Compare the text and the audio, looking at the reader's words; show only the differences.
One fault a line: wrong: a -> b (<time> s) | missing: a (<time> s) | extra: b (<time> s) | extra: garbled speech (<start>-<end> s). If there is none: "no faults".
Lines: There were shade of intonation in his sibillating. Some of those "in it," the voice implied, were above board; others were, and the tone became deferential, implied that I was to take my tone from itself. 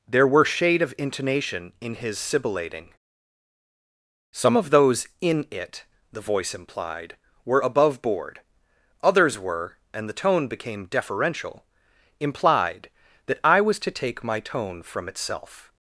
no faults